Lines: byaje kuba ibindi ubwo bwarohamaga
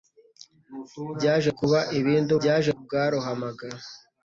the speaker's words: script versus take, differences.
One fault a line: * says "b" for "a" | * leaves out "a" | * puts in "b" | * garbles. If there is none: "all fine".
* says "byaje" for "ubwo"